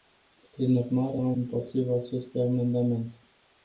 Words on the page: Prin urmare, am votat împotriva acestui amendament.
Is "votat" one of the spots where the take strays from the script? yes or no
yes